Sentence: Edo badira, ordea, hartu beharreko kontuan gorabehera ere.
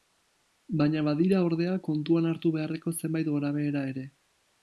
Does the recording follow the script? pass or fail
fail